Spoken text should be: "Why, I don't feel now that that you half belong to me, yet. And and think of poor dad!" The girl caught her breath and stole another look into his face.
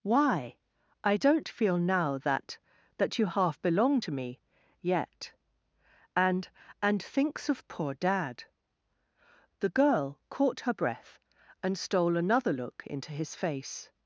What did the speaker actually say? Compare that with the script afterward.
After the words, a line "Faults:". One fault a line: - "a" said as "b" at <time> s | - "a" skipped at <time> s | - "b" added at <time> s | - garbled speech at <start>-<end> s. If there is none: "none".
"Why, I don't feel now that that you half belong to me, yet. And and thinks of poor dad!" The girl caught her breath and stole another look into his face.
Faults:
- "think" said as "thinks" at 7.0 s